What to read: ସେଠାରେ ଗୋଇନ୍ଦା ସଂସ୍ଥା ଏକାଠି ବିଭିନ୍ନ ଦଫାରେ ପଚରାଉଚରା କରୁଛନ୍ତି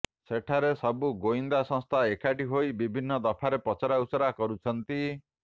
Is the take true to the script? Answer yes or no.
no